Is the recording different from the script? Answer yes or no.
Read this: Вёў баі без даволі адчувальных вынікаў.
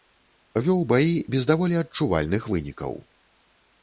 no